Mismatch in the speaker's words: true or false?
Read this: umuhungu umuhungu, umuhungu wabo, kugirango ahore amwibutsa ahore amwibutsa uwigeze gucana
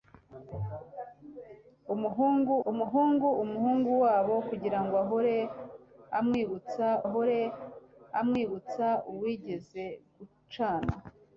false